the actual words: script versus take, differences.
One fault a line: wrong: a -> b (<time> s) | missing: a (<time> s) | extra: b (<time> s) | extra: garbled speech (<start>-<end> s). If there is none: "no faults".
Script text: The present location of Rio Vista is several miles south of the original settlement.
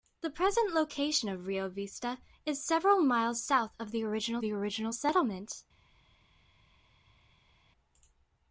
extra: the original (4.4 s)